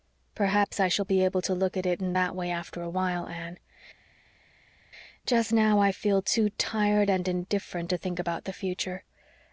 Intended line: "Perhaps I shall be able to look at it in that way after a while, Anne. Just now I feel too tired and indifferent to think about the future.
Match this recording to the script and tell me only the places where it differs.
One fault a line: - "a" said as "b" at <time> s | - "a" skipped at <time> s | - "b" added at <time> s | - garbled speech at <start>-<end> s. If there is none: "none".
none